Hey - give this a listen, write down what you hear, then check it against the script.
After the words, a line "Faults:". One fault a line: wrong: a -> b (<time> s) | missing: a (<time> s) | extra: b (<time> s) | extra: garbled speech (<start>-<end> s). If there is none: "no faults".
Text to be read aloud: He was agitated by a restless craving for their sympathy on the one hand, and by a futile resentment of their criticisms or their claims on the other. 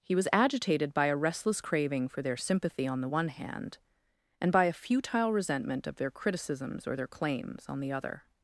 He was agitated by a restless craving for their sympathy on the one hand, and by a futile resentment of their criticisms or their claims on the other.
Faults:
no faults